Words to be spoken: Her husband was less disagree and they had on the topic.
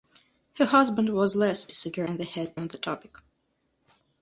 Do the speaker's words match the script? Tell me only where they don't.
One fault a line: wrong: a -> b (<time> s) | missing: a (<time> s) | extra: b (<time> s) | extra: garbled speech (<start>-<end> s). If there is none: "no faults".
no faults